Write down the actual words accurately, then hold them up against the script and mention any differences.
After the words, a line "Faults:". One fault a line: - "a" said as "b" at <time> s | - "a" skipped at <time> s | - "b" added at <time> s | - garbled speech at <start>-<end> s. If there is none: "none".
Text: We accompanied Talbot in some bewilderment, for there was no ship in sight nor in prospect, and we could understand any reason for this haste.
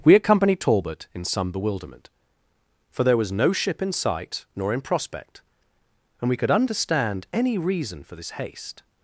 We accompanied Talbot in some bewilderment, for there was no ship in sight nor in prospect, and we could understand any reason for this haste.
Faults:
none